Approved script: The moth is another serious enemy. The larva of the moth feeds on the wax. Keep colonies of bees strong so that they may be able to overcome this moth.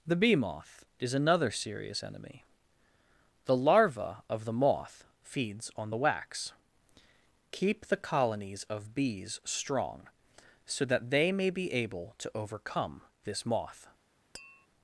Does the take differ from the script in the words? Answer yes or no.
yes